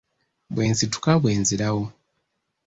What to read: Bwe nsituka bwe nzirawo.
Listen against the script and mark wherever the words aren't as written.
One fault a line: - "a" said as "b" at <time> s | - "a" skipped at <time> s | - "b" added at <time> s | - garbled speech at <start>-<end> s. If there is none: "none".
none